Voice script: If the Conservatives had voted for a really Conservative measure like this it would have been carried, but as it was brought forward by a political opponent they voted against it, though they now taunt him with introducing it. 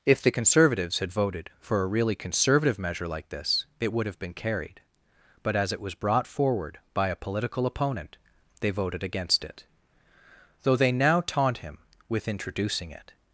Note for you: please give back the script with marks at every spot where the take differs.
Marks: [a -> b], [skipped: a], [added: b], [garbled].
If the Conservatives had voted for a really Conservative measure like this it would have been carried, but as it was brought forward by a political opponent they voted against it, though they now taunt him with introducing it.